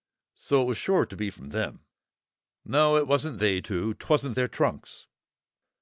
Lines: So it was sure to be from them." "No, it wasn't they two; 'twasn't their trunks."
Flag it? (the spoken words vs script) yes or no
no